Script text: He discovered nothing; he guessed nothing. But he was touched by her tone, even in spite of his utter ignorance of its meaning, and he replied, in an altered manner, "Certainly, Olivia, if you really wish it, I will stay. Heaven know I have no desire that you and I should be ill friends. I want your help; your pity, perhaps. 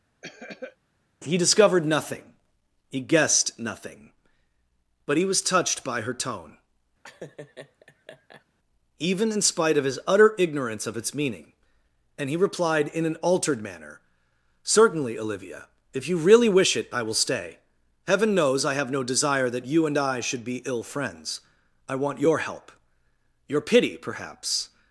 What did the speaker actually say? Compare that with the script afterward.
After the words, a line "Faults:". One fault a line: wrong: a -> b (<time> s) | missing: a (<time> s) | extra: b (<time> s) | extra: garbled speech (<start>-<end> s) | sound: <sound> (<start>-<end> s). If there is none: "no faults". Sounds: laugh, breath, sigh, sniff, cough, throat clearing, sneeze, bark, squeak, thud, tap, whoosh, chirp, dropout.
He discovered nothing; he guessed nothing. But he was touched by her tone, even in spite of his utter ignorance of its meaning, and he replied, in an altered manner, "Certainly, Olivia, if you really wish it, I will stay. Heaven knows I have no desire that you and I should be ill friends. I want your help; your pity, perhaps.
Faults:
sound: cough (0.2-0.8 s)
sound: laugh (7.0-8.5 s)
wrong: know -> knows (18.4 s)